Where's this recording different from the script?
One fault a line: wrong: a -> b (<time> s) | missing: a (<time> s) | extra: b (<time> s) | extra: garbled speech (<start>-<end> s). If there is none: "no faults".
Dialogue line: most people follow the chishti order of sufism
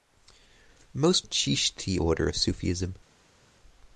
missing: people follow the (1.2 s)